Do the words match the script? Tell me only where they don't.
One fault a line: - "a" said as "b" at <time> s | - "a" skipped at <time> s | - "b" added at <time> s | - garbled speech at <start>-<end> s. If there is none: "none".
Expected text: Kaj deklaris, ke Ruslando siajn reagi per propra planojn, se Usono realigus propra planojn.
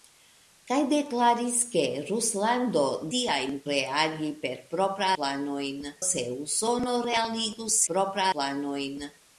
none